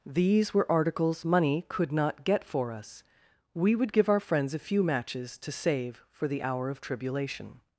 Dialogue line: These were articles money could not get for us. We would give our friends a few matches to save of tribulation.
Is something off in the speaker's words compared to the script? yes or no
yes